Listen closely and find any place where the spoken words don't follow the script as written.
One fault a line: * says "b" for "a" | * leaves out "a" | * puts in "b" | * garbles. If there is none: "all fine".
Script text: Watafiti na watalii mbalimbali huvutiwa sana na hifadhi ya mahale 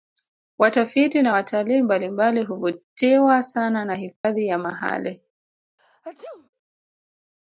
all fine